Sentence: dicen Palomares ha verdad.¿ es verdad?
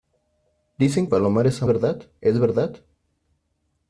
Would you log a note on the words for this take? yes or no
no